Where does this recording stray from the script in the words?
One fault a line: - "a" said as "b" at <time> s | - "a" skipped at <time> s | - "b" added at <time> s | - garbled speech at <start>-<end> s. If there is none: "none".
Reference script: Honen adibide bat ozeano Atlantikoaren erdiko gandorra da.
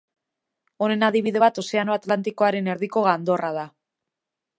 none